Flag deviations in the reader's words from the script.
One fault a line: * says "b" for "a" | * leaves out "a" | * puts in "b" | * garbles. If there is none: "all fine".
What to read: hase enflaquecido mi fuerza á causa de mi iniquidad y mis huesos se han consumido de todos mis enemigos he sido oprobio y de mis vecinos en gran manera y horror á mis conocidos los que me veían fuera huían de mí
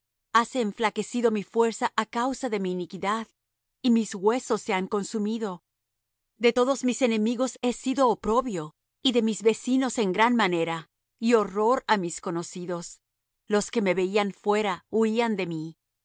all fine